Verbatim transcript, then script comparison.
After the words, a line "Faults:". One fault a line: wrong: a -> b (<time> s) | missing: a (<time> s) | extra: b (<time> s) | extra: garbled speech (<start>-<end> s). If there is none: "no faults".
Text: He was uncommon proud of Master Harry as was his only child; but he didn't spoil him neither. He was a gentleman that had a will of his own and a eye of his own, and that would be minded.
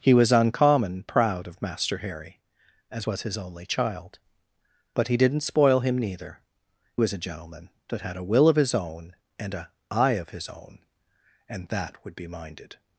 He was uncommon proud of Master Harry as was his only child; but he didn't spoil him neither. Was a gentleman that had a will of his own and a eye of his own, and that would be minded.
Faults:
missing: He (6.4 s)